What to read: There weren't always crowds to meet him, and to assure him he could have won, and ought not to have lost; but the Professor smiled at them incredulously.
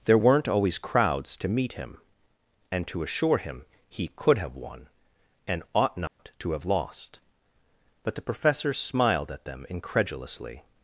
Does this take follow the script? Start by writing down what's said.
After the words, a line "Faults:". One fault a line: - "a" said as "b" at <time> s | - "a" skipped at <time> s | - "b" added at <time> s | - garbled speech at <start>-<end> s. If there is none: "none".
There weren't always crowds to meet him, and to assure him he could have won, and ought not to have lost; but the Professor smiled at them incredulously.
Faults:
none